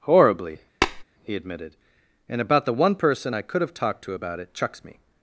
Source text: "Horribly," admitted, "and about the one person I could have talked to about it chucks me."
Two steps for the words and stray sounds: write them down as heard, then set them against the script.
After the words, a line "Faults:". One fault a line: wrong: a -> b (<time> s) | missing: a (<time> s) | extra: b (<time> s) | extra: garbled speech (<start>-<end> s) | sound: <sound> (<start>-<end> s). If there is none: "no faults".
"Horribly," he admitted, "and about the one person I could have talked to about it chucks me."
Faults:
sound: tap (0.8-1.0 s)
extra: he (1.2 s)